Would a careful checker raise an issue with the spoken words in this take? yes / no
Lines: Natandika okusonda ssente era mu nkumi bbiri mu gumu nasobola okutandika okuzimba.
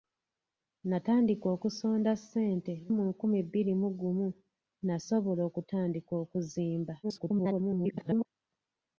yes